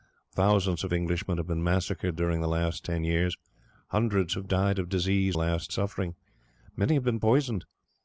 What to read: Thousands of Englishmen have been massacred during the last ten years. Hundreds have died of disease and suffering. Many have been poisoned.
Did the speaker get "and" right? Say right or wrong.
wrong